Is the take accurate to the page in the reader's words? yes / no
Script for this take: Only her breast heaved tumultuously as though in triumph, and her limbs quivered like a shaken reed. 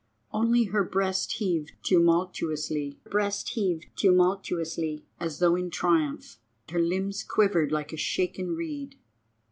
no